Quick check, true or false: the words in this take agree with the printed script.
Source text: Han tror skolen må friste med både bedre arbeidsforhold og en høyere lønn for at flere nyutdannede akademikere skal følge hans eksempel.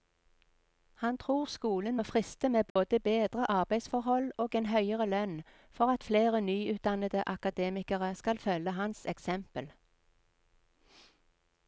true